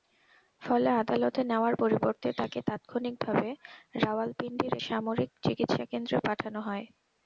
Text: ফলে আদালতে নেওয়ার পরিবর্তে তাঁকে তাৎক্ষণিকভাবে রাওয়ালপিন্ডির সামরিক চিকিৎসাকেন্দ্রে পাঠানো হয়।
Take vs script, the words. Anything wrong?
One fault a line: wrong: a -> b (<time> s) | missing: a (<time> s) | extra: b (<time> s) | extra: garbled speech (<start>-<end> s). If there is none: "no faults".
no faults